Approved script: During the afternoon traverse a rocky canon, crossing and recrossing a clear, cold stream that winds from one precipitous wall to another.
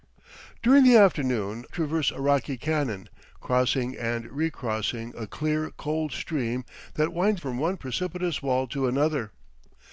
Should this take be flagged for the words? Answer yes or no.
no